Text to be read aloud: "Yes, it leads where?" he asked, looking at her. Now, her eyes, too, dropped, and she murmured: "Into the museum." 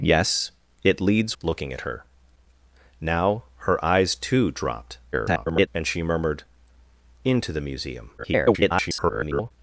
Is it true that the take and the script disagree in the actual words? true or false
true